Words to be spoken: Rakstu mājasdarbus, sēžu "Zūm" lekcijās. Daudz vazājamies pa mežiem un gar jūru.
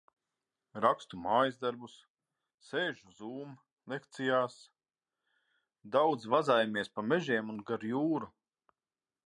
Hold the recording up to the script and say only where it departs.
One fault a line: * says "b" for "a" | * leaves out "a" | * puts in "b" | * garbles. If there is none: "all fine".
all fine